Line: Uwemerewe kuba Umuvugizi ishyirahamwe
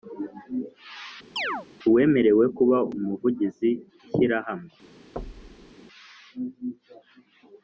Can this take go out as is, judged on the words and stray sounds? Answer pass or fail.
fail